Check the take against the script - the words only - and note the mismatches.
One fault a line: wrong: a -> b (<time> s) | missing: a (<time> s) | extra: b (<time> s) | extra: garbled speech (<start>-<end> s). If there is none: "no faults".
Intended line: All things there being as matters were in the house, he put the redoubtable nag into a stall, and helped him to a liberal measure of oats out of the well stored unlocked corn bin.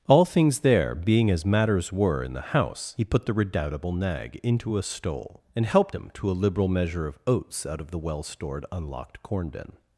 wrong: stall -> stole (4.8 s)